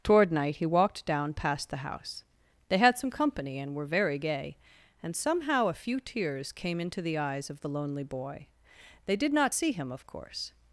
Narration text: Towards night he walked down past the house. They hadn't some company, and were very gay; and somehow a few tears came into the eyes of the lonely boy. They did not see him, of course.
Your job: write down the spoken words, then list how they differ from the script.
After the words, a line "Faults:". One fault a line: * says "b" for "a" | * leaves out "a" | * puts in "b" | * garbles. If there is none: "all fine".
Toward night he walked down past the house. They had some company, and were very gay; and somehow a few tears came into the eyes of the lonely boy. They did not see him, of course.
Faults:
* says "Toward" for "Towards"
* says "had" for "hadn't"